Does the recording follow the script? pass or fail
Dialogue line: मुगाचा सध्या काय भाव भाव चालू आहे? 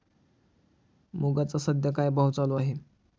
fail